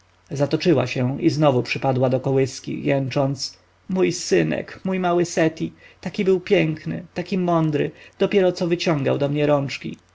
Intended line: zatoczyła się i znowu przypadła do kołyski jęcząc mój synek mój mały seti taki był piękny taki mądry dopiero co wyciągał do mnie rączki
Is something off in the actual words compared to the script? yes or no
no